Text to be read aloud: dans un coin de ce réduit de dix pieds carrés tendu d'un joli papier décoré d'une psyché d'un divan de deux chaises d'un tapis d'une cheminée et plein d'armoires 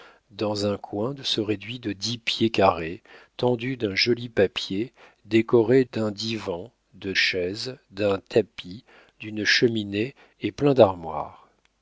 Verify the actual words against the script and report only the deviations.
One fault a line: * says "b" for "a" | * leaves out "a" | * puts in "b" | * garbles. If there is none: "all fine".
* leaves out "d'une psyché"
* leaves out "deux"